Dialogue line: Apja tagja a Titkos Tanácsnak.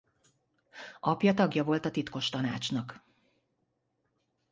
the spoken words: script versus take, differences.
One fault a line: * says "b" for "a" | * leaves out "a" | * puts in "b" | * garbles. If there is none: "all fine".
* puts in "volt"